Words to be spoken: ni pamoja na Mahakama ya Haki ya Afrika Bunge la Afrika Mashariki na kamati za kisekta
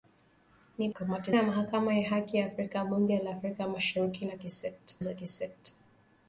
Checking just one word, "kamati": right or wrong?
wrong